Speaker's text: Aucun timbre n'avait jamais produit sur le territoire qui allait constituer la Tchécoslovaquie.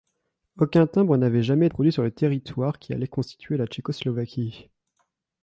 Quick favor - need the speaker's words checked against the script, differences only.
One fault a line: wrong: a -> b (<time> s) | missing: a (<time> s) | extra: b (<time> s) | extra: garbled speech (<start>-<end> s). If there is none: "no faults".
no faults